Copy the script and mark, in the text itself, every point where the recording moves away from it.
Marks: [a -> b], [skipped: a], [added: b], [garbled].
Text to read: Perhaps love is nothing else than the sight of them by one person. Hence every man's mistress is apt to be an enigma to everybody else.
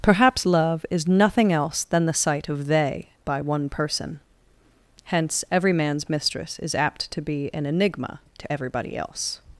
Perhaps love is nothing else than the sight of [them -> they] by one person. Hence every man's mistress is apt to be an enigma to everybody else.